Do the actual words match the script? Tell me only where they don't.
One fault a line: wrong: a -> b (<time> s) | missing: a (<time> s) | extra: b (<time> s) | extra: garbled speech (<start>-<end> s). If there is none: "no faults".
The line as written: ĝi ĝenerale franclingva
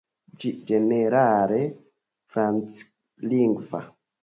no faults